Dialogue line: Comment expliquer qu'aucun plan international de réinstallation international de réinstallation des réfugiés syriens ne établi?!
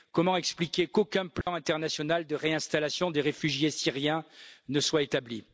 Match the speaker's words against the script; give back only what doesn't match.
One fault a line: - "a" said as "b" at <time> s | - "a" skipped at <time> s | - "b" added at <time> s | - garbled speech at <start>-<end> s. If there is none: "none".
- "international de réinstallation" skipped at 3.1 s
- "soit" added at 4.8 s